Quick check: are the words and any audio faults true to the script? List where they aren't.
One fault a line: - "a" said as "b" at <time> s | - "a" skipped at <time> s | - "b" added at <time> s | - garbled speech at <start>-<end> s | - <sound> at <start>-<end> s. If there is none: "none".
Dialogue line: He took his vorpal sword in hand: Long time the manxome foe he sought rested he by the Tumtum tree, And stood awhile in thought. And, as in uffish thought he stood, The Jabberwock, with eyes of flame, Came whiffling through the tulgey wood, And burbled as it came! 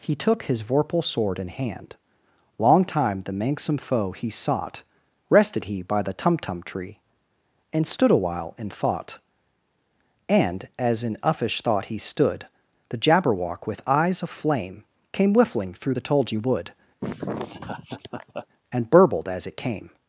- laugh at 17.0-18.5 s